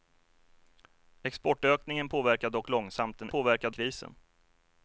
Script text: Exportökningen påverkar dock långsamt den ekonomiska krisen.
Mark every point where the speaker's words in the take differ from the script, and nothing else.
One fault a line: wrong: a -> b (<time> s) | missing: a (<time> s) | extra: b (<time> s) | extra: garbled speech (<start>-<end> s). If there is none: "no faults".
wrong: ekonomiska -> påverkar (3.3 s)